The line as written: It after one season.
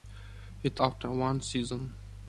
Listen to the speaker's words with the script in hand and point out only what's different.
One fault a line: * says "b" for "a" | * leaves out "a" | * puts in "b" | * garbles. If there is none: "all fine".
all fine